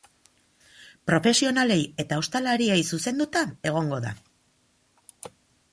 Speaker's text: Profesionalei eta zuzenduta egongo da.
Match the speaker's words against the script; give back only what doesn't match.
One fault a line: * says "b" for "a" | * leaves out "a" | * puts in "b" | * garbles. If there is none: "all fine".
* puts in "ostalariei"